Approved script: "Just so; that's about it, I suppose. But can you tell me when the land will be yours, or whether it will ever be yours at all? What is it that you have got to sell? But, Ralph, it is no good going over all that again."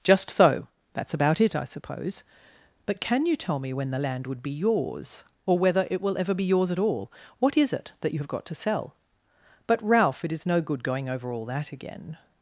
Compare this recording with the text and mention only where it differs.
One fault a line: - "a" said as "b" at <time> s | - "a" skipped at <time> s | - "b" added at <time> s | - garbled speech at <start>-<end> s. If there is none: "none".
- "will" said as "would" at 4.2 s